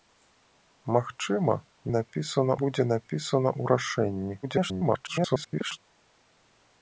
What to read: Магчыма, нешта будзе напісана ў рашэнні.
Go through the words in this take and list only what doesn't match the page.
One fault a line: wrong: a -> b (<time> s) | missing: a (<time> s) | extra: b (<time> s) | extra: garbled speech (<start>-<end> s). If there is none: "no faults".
wrong: нешта -> напісана (2.0 s)
extra: garbled speech (4.4-5.8 s)